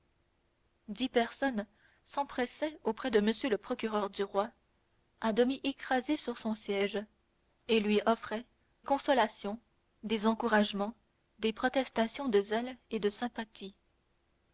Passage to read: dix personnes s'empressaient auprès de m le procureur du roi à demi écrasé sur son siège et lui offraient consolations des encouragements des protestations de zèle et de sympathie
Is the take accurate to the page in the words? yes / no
yes